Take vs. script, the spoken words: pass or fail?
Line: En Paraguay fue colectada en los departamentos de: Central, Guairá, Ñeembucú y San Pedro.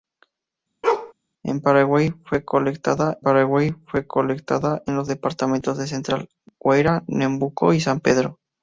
fail